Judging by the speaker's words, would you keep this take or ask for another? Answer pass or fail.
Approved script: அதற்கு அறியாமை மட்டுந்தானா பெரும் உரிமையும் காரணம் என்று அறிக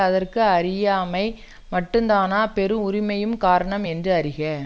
pass